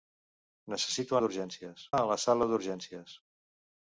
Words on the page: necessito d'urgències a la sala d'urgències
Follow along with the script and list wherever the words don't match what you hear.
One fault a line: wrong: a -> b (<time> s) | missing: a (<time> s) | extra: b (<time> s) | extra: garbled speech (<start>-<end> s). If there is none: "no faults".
no faults